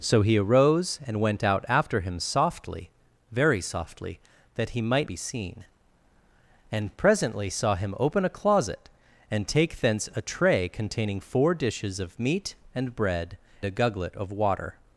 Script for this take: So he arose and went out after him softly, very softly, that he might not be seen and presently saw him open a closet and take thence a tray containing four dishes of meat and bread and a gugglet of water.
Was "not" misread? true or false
true